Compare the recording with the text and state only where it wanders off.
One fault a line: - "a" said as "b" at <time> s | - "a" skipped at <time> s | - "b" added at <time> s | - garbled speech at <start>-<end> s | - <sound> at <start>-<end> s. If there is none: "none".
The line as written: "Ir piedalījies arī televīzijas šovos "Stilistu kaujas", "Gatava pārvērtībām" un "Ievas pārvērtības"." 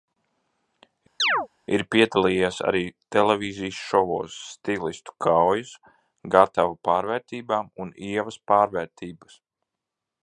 - chirp at 1.2-1.5 s